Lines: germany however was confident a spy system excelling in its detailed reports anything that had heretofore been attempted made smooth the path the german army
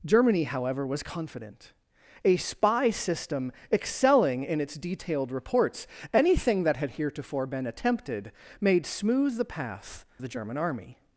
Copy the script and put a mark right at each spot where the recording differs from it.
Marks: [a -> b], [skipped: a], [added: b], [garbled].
germany however was confident a spy system excelling in its detailed reports anything that had heretofore been attempted made smooth the path the german army